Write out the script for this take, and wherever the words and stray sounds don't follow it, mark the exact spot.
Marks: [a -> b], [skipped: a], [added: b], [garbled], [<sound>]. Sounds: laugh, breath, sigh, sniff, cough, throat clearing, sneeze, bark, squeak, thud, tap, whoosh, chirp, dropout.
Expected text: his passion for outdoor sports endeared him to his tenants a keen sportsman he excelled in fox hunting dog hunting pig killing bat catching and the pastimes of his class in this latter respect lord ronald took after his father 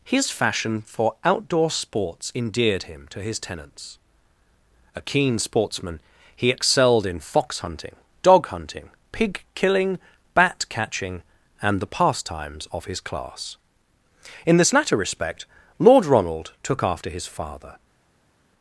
his [passion -> fashion] for outdoor sports endeared him to his tenants a keen sportsman he excelled in fox hunting dog hunting pig killing bat catching and the pastimes of his class in this latter respect lord ronald took after his father